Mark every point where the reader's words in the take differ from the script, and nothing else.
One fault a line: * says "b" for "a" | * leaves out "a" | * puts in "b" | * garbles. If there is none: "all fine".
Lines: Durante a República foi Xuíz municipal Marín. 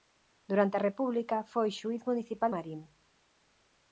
all fine